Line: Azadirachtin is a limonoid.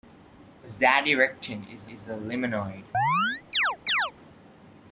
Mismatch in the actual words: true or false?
true